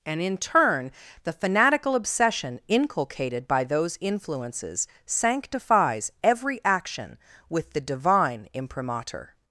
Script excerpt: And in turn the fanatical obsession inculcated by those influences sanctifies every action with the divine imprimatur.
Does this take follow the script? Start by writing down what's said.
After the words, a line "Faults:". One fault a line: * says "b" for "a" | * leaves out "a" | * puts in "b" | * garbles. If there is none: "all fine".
And in turn the fanatical obsession inculcated by those influences sanctifies every action with the divine imprimatur.
Faults:
all fine